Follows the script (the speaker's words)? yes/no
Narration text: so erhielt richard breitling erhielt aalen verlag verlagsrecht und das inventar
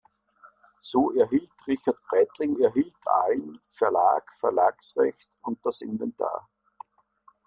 yes